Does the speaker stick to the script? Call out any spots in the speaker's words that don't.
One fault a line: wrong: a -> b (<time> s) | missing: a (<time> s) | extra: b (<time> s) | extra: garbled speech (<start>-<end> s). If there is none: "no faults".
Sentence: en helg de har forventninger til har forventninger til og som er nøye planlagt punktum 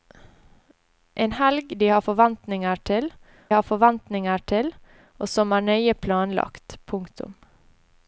no faults